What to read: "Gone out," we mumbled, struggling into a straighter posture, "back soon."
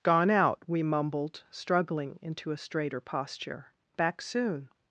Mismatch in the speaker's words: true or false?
false